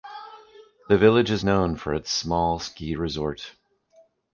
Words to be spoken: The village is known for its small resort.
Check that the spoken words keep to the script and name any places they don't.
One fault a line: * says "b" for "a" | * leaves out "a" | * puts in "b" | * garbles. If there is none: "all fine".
* puts in "ski"